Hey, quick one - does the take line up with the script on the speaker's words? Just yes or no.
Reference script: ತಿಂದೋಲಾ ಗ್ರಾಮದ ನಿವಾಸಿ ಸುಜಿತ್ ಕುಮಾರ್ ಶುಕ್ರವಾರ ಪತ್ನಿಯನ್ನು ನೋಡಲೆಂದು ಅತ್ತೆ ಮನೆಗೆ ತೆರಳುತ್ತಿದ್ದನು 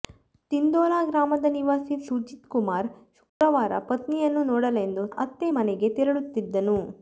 yes